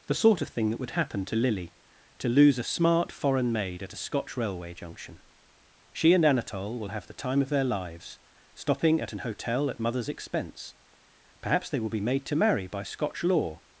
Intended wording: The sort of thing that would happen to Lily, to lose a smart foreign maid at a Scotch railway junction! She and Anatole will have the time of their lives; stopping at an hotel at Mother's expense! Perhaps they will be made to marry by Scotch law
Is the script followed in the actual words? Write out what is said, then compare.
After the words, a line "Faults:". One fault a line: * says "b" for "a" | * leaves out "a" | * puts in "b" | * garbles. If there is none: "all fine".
The sort of thing that would happen to Lily, to lose a smart foreign maid at a Scotch railway junction! She and Anatole will have the time of their lives; stopping at an hotel at Mother's expense! Perhaps they will be made to marry by Scotch law
Faults:
all fine